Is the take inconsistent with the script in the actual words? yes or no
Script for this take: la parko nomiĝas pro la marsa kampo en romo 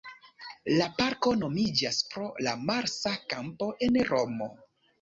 no